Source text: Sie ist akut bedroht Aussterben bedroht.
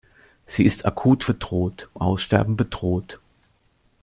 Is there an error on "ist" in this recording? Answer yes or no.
no